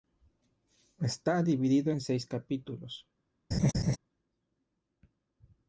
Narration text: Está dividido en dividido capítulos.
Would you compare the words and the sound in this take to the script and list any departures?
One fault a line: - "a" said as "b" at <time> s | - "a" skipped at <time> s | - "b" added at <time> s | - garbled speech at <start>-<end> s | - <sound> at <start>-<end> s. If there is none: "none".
- "dividido" said as "seis" at 2.0 s
- laugh at 3.5-4.0 s